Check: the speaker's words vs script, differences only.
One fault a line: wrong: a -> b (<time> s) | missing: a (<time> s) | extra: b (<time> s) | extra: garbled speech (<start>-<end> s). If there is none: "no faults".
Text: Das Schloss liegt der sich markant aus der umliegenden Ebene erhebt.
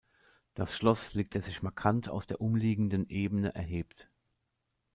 no faults